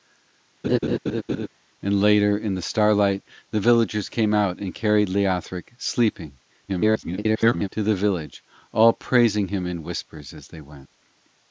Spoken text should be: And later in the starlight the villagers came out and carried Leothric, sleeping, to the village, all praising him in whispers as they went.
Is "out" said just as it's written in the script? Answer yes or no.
yes